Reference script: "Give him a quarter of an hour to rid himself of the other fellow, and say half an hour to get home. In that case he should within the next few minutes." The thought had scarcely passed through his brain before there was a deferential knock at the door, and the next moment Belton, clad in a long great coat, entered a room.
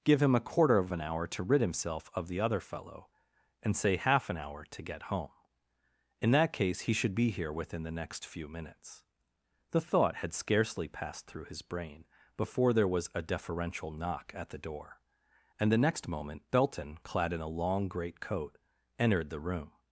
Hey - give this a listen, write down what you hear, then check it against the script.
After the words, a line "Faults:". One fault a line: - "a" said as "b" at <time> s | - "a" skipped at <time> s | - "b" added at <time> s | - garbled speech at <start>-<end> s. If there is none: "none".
"Give him a quarter of an hour to rid himself of the other fellow, and say half an hour to get home. In that case he should be here within the next few minutes." The thought had scarcely passed through his brain before there was a deferential knock at the door, and the next moment Belton, clad in a long great coat, entered the room.
Faults:
- "be here" added at 7.1 s
- "a" said as "the" at 19.3 s